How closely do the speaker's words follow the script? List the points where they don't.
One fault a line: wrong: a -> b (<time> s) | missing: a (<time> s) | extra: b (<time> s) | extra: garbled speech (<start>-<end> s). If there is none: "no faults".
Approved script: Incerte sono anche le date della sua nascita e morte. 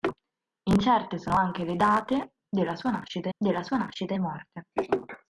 extra: della sua nascita (3.4 s)